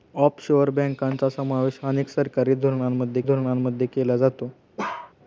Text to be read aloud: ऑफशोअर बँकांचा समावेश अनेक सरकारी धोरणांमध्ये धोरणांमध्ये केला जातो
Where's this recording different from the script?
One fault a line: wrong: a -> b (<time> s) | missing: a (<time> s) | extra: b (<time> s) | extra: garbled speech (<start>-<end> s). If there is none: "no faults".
no faults